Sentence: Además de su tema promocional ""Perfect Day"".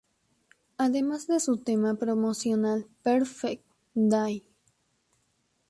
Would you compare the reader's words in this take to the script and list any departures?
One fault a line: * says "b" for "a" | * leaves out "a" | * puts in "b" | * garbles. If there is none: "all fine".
all fine